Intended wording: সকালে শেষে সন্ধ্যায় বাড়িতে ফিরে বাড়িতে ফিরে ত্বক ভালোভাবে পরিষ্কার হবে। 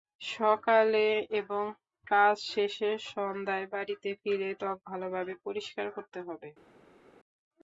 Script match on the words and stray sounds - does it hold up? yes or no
no